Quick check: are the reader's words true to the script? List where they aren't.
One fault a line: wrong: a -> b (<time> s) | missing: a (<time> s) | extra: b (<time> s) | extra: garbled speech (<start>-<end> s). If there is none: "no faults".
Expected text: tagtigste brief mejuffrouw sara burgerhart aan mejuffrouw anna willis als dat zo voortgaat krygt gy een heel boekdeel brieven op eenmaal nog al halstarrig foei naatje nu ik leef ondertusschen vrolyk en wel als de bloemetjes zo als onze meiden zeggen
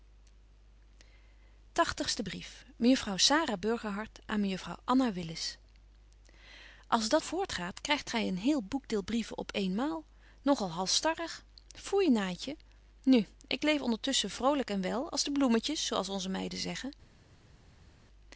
missing: zo (7.2 s)